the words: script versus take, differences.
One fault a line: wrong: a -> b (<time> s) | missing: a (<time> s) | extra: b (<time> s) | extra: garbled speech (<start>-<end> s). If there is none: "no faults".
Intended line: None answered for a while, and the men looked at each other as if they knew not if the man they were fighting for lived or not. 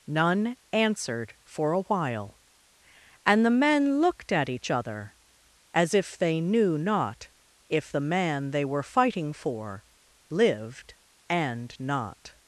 wrong: or -> and (11.3 s)